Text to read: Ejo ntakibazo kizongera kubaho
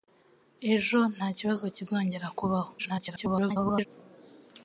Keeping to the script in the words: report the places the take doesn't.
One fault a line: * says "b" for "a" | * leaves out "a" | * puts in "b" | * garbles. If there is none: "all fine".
* garbles